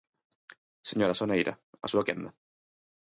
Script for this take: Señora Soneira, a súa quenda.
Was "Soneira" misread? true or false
false